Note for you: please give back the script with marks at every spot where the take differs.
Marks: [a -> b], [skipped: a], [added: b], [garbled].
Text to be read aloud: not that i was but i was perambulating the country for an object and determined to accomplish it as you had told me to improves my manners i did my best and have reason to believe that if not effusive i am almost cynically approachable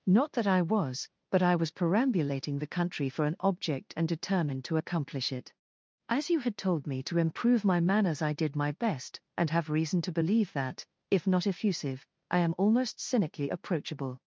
not that i was but i was perambulating the country for an object and determined to accomplish it as you had told me to [improves -> improve] my manners i did my best and have reason to believe that if not effusive i am almost cynically approachable